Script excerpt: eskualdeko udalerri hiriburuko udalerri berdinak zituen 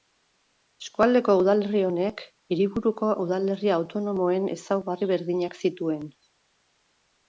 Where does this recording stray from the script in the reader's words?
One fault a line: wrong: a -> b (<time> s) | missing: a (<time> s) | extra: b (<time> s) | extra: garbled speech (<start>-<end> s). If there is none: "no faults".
extra: honek (1.9 s)
extra: autonomoen ezaugarri (3.8 s)